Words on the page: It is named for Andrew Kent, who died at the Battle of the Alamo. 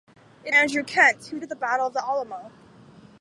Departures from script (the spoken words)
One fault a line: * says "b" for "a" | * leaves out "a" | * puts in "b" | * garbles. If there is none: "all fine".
* leaves out "is named for"
* leaves out "died"